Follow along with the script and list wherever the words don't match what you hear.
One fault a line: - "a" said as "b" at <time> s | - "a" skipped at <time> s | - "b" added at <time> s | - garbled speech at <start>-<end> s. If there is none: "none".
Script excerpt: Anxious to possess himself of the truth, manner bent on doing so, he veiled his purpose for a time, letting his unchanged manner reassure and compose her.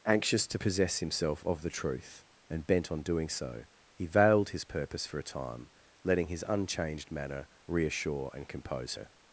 - "manner" said as "and" at 2.5 s